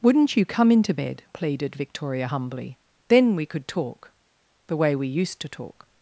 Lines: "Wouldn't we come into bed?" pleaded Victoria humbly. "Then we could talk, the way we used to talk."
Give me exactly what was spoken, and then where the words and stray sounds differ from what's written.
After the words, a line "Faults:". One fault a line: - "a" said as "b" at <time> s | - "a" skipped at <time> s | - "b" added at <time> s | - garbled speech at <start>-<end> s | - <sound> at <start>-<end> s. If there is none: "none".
"Wouldn't you come into bed?" pleaded Victoria humbly. "Then we could talk, the way we used to talk."
Faults:
- "we" said as "you" at 0.3 s